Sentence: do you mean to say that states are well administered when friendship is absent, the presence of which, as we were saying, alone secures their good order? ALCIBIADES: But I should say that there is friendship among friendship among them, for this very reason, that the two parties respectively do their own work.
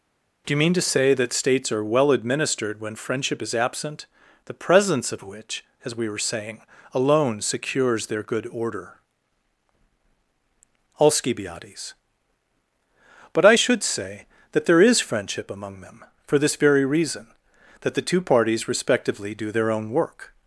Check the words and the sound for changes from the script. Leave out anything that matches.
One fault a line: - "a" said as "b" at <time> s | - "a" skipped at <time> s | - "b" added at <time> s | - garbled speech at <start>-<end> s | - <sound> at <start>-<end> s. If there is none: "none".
- "friendship among" skipped at 15.8 s